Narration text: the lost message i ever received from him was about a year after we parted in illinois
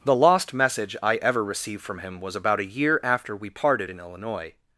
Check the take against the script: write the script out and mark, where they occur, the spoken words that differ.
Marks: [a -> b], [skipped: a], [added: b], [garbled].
the lost message i ever received from him was about a year after we parted in illinois